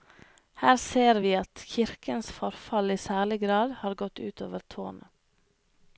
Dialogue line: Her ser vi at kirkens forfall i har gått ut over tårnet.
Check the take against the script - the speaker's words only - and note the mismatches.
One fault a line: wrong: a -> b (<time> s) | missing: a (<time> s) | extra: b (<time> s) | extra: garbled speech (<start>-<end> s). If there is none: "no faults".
extra: særlig grad (3.0 s)